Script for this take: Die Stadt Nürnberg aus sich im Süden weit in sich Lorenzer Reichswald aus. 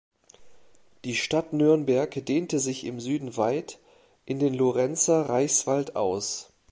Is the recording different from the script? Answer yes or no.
yes